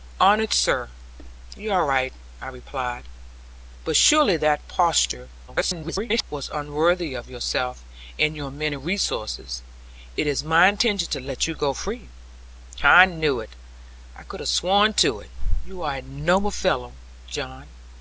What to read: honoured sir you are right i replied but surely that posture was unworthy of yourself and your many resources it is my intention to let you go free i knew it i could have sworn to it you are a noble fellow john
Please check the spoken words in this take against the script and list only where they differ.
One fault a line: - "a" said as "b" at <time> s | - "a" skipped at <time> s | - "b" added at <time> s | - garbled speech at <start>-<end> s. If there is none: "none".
- garbled speech at 5.5-6.2 s